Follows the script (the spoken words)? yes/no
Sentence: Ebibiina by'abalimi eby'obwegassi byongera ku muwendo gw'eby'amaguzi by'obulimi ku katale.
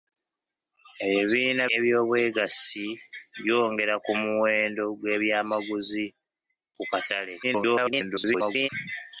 no